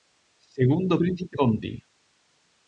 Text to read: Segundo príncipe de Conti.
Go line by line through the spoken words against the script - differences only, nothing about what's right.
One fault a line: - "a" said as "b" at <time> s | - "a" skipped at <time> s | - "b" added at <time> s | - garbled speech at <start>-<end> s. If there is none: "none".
- "de" skipped at 1.4 s